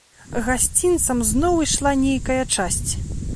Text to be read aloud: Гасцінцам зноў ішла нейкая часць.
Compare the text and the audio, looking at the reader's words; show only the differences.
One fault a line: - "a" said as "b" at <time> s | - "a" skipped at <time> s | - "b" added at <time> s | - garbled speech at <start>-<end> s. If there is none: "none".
none